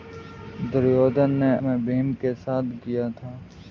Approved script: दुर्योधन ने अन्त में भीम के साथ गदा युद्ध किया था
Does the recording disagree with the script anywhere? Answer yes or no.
yes